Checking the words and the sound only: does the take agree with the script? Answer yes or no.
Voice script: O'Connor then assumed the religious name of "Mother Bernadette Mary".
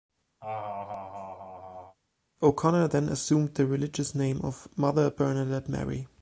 no